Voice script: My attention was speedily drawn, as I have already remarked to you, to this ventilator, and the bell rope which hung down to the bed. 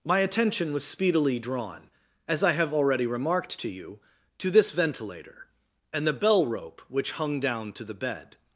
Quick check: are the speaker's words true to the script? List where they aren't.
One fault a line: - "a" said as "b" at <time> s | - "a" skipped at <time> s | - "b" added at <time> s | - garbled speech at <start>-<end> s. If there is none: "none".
none